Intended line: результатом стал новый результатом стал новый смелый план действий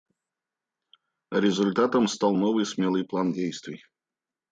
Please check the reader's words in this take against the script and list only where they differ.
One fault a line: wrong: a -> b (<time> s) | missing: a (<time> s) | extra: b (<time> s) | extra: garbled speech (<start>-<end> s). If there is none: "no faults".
missing: результатом стал новый (2.6 s)